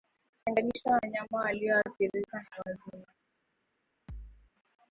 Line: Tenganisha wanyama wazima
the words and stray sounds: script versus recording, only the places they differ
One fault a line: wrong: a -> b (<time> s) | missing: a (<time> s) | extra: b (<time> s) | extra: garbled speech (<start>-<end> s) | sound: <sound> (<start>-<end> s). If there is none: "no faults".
extra: walioathirika na (1.4 s)
sound: thud (4.1-4.5 s)